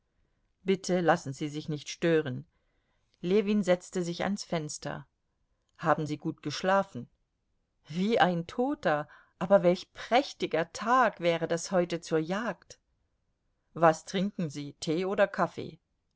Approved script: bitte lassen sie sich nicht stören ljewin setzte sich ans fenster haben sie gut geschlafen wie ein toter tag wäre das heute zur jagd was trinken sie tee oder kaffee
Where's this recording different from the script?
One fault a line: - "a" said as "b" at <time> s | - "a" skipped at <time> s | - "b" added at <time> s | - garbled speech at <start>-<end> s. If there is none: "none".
- "aber welch prächtiger" added at 9.4 s